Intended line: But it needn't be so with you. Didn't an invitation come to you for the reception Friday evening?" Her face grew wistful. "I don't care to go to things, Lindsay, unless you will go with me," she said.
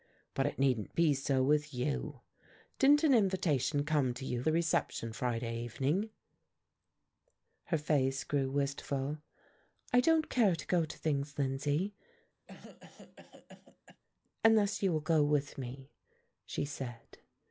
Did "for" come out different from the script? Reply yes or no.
yes